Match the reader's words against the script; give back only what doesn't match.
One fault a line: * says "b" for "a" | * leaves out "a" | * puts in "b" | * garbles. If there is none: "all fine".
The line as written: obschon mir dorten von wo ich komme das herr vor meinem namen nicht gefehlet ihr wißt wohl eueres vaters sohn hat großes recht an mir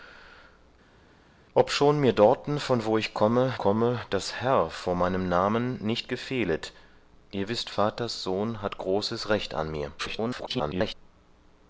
* puts in "komme"
* leaves out "wohl eueres"
* garbles